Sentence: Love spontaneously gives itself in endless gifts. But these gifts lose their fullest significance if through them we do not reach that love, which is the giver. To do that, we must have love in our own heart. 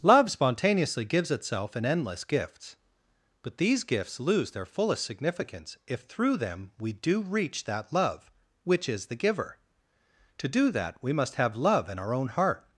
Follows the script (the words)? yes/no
no